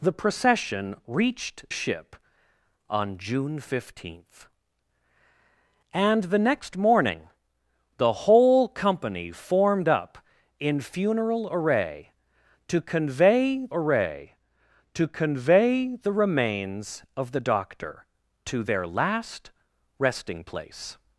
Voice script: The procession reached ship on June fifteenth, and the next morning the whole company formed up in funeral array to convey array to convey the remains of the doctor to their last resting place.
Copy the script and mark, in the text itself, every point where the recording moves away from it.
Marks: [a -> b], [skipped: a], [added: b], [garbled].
The procession reached ship on June fifteenth, and the next morning the whole company formed up in funeral array to convey array to convey the remains of the doctor to their last resting place.